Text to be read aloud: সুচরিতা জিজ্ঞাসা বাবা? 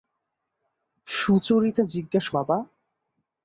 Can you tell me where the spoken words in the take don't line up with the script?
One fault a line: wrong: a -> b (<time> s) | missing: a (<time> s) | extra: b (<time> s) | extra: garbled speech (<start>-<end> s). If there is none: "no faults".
no faults